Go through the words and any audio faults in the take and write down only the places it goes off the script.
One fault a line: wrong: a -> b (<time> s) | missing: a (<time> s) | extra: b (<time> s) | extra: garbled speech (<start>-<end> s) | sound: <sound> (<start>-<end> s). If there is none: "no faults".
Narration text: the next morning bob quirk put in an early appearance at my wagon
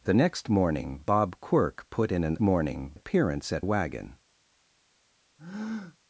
wrong: early -> morning (2.4 s)
missing: my (3.6 s)
sound: breath (5.4-6.0 s)